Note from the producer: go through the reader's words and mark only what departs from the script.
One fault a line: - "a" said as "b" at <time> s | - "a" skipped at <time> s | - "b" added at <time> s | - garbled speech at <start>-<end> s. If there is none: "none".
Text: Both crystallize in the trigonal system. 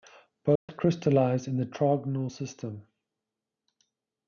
none